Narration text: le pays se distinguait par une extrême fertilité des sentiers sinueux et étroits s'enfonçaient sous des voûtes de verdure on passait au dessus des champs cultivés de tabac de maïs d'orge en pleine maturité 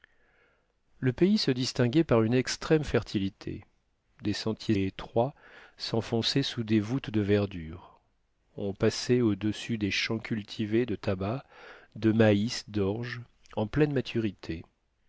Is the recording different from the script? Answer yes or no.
yes